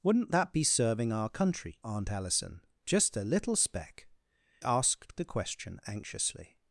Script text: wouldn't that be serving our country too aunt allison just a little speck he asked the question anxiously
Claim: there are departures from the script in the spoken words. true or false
true